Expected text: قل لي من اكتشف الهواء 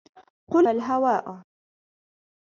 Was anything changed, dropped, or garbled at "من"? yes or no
yes